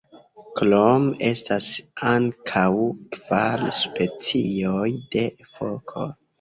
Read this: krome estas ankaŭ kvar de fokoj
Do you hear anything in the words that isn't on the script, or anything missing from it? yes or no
yes